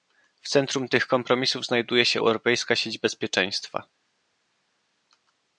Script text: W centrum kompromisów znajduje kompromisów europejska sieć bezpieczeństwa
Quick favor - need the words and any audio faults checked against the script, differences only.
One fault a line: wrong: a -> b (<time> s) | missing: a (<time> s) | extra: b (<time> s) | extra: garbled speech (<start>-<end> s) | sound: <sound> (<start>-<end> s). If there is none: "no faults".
extra: tych (0.9 s)
wrong: kompromisów -> się (2.0 s)